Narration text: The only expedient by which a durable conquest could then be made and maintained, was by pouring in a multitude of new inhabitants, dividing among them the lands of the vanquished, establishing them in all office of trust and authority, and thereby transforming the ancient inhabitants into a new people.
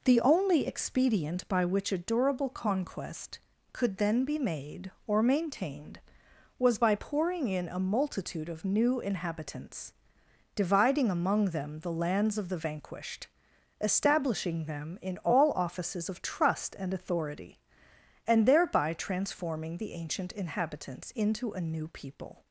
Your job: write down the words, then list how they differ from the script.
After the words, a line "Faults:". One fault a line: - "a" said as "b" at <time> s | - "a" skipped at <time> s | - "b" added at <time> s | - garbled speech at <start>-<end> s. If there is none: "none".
The only expedient by which a durable conquest could then be made or maintained, was by pouring in a multitude of new inhabitants, dividing among them the lands of the vanquished, establishing them in all offices of trust and authority, and thereby transforming the ancient inhabitants into a new people.
Faults:
- "and" said as "or" at 5.0 s
- "office" said as "offices" at 15.5 s